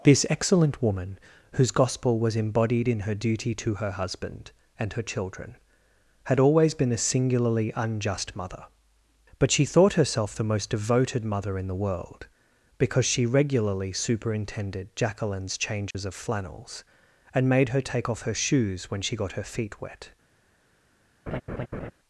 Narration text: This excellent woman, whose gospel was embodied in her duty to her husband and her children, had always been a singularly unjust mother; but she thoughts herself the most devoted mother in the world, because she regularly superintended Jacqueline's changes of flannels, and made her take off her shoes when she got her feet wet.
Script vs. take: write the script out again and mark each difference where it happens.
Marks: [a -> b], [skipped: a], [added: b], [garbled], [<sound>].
This excellent woman, whose gospel was embodied in her duty to her husband and her children, had always been a singularly unjust mother; but she [thoughts -> thought] herself the most devoted mother in the world, because she regularly superintended Jacqueline's changes [dropout] of flannels, and made her take off her shoes when she got her feet wet. [laugh]